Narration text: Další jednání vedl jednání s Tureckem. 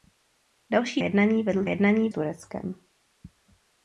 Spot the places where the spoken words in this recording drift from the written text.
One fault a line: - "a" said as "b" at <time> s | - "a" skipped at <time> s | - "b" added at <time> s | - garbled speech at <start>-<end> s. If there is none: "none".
none